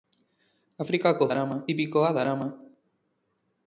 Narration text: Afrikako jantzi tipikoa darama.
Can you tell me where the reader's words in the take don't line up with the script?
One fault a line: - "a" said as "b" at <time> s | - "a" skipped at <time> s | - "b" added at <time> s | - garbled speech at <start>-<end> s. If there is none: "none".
- "jantzi" said as "darama" at 1.3 s